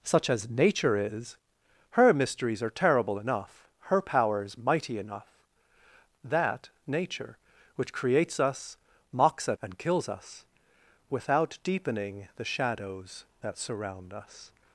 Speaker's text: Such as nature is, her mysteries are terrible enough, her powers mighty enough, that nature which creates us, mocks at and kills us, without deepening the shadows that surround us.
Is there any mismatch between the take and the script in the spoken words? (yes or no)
no